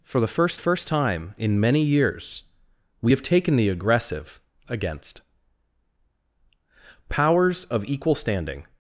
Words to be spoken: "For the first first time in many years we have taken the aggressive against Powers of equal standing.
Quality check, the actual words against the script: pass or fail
pass